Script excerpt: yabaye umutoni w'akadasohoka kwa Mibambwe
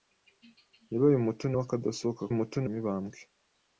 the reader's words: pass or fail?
fail